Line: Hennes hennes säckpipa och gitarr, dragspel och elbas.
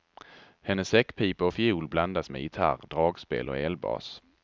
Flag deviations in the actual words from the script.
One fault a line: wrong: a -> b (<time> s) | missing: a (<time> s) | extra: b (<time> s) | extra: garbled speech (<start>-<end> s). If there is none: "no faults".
missing: hennes (0.9 s)
extra: fiol blandas med (1.5 s)